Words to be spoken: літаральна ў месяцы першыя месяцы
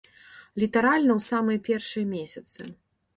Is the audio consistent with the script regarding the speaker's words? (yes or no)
no